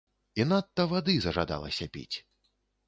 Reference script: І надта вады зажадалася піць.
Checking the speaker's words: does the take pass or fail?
pass